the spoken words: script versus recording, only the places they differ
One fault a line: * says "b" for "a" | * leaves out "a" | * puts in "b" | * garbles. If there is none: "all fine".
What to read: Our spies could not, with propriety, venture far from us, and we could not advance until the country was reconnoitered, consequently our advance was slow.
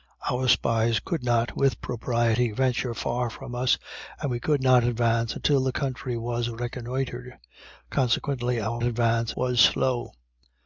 all fine